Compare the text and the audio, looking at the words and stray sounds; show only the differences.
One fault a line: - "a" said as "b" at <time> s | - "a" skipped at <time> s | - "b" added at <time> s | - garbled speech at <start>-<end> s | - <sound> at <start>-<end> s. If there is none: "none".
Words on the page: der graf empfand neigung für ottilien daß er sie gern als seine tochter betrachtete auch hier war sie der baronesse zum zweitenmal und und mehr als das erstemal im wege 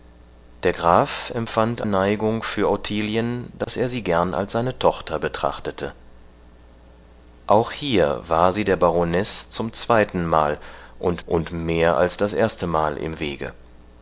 - dropout at 3.6-3.7 s